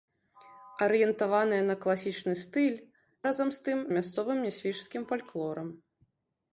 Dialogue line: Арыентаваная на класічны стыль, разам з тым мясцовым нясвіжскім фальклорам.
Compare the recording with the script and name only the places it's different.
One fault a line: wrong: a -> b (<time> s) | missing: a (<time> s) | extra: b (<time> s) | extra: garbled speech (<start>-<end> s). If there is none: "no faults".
no faults